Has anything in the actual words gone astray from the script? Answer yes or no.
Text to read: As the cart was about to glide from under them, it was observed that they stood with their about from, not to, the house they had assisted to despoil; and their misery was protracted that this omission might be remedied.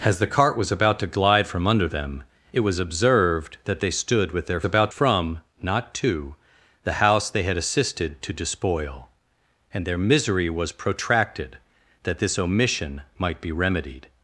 no